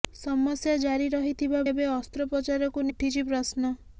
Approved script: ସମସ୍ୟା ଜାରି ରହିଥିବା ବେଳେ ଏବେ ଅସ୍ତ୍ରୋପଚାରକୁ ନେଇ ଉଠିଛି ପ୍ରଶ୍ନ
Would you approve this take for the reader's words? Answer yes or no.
no